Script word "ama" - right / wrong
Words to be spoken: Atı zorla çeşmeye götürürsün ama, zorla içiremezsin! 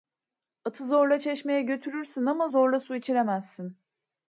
right